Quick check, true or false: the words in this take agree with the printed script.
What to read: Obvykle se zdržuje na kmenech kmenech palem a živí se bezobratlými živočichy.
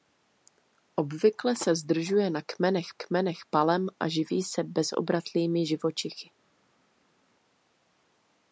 true